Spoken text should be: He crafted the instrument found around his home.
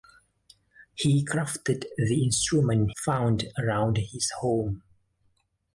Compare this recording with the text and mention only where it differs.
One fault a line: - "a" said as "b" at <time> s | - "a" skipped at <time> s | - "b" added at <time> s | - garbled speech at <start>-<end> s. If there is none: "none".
none